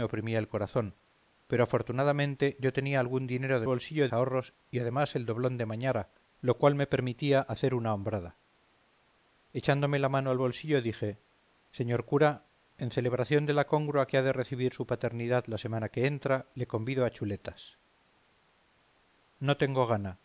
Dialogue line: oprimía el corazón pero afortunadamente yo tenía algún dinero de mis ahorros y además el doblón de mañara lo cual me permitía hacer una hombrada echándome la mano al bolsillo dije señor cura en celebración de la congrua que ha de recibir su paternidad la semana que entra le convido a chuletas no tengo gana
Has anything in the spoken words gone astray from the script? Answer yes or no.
yes